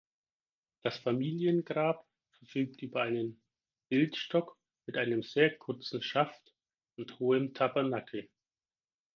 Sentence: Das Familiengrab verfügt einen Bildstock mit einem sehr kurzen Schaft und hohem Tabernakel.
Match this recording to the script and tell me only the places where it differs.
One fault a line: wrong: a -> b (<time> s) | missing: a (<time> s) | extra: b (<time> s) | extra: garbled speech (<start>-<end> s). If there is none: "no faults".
extra: über (2.8 s)